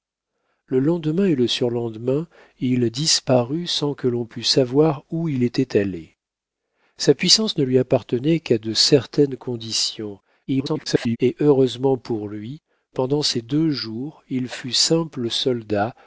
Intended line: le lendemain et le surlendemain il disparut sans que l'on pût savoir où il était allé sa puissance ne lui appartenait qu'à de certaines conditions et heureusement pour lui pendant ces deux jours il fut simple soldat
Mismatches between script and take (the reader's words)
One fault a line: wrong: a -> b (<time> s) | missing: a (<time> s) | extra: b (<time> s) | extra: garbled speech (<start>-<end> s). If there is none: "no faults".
extra: garbled speech (10.5-11.2 s)